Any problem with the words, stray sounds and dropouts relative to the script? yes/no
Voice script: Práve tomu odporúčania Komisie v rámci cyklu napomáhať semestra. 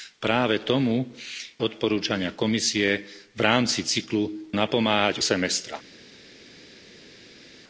no